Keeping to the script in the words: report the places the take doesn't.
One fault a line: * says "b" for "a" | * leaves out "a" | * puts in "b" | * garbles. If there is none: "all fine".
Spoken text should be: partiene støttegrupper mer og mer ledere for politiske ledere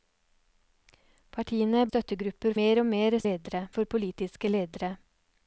all fine